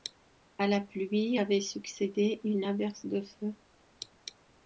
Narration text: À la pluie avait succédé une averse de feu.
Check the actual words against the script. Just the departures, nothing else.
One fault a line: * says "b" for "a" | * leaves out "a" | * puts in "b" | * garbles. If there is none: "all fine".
all fine